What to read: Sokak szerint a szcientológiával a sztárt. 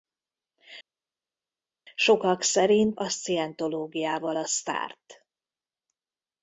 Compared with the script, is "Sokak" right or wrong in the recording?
right